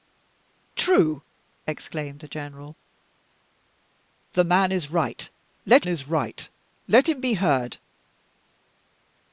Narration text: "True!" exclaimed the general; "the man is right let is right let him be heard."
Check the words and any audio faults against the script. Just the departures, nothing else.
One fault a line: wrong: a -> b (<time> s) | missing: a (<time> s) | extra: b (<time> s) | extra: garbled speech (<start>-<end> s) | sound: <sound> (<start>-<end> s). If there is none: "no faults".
no faults